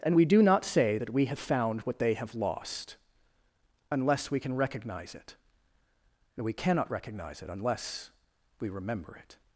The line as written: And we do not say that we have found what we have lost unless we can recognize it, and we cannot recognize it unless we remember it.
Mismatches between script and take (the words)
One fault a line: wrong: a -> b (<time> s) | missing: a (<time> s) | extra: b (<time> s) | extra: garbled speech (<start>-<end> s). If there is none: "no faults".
wrong: we -> they (2.0 s)